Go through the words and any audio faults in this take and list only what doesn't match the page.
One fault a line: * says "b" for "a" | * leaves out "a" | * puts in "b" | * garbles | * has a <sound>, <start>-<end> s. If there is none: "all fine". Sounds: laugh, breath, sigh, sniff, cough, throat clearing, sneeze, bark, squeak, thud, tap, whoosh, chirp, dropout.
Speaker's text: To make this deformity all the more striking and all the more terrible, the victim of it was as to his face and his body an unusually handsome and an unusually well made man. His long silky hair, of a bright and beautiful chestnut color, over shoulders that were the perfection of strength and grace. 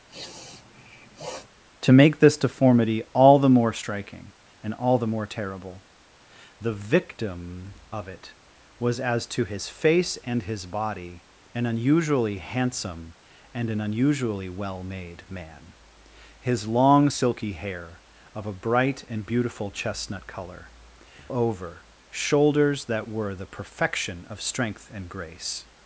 * has a sniff, 0.1-1.5 s